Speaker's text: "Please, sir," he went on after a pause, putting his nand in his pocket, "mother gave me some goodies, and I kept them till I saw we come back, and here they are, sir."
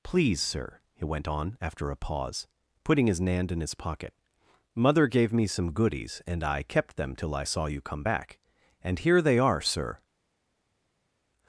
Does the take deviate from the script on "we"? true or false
true